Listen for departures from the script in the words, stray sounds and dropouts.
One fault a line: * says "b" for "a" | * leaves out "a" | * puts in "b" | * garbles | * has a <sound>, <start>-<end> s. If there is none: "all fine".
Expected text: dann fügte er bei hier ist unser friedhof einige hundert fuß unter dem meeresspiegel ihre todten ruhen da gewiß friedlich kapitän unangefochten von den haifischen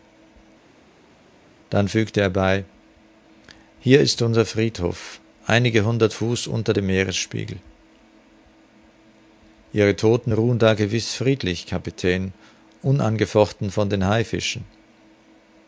all fine